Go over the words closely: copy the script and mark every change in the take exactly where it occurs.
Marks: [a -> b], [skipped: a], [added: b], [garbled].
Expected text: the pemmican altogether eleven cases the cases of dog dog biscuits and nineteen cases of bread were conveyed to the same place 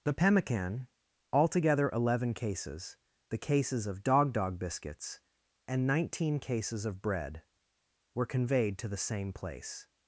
the pemmican altogether eleven cases the cases of dog dog biscuits and nineteen cases of bread were conveyed to the same place